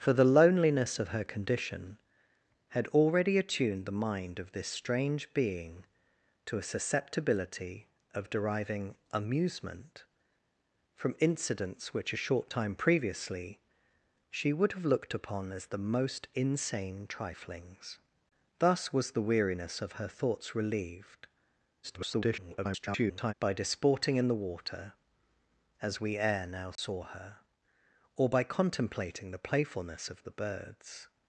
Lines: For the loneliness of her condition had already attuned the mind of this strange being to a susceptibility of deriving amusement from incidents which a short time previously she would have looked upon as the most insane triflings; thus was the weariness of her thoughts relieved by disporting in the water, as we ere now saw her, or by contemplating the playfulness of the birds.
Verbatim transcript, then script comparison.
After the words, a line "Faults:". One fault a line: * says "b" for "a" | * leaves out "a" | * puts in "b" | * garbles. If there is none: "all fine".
For the loneliness of her condition had already attuned the mind of this strange being to a susceptibility of deriving amusement from incidents which a short time previously she would have looked upon as the most insane triflings; thus was the weariness of her thoughts relieved [garbled] by disporting in the water, as we ere now saw her, or by contemplating the playfulness of the birds.
Faults:
* garbles